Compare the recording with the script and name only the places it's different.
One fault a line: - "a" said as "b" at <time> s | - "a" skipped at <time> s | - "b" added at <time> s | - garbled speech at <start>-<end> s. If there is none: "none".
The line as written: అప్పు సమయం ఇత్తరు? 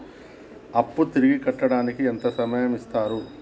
- "తిరిగి కట్టడానికి ఎంత" added at 1.1 s